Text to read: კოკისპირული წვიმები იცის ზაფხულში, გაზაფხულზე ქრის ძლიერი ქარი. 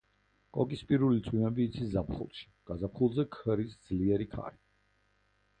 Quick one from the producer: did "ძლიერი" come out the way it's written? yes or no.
yes